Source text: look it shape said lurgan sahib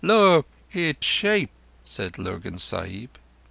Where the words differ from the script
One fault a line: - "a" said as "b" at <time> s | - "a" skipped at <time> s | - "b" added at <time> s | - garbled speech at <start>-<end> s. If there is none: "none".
none